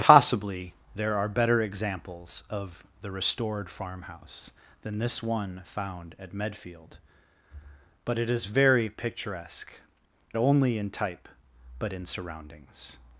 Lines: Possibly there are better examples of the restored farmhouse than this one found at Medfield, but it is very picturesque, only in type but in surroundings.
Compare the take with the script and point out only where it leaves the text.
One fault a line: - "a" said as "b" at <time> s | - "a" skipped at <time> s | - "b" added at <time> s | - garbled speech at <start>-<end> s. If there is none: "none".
none